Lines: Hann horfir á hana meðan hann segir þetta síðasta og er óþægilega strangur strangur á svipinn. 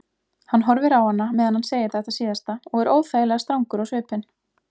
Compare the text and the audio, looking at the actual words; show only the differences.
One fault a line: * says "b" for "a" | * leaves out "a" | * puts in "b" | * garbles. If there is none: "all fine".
* leaves out "strangur"